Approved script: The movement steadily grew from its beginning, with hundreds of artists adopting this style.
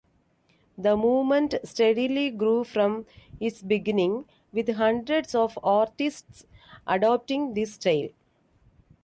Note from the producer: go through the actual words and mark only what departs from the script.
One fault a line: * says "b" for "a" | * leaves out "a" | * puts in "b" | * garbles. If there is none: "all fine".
all fine